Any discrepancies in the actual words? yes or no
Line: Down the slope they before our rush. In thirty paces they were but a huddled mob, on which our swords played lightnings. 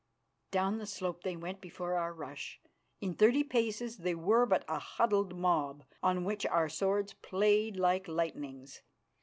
yes